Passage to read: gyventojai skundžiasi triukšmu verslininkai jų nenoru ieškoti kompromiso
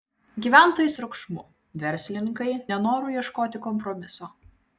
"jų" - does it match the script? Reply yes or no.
no